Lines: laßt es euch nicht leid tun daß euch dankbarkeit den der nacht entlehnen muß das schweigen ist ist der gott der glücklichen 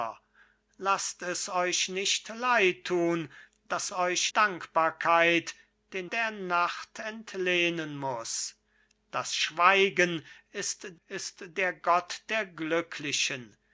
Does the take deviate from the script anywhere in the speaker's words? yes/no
no